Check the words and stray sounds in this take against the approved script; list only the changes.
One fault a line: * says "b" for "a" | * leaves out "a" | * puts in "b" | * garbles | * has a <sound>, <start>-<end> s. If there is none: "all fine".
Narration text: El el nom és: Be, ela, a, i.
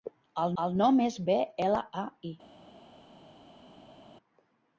all fine